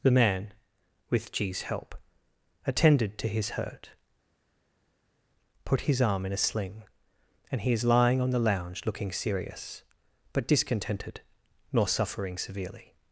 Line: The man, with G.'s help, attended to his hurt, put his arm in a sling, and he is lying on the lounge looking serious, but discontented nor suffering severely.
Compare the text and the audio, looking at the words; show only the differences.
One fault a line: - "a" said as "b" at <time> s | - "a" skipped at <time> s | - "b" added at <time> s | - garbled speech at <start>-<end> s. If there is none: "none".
none